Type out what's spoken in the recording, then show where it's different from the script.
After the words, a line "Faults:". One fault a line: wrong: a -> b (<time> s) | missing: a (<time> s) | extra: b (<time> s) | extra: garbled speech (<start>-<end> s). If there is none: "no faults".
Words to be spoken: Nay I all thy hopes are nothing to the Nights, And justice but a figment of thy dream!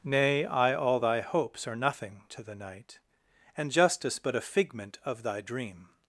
Nay I all thy hopes are nothing to the Night, And justice but a figment of thy dream!
Faults:
wrong: Nights -> Night (2.6 s)